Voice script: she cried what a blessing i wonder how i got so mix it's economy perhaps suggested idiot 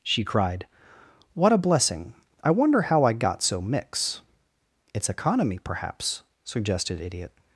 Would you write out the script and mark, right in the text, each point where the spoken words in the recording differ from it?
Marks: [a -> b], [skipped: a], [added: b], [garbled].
she cried what a blessing i wonder how i got so mix it's economy perhaps suggested idiot